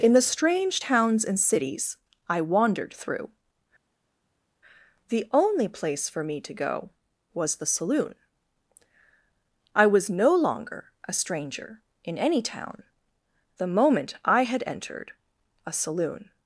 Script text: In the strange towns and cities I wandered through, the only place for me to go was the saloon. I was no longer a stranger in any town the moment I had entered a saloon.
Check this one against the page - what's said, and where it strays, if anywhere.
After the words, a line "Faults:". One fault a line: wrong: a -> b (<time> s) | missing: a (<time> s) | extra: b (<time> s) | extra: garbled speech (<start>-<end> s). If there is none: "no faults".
In the strange towns and cities I wandered through, the only place for me to go was the saloon. I was no longer a stranger in any town the moment I had entered a saloon.
Faults:
no faults